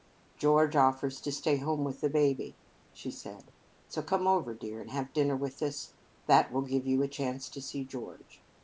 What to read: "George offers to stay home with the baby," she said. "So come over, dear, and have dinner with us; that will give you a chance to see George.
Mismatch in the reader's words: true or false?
false